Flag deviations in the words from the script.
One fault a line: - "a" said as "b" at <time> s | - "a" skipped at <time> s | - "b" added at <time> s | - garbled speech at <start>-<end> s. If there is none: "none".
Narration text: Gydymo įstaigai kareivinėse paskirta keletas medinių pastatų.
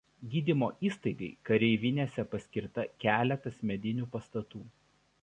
none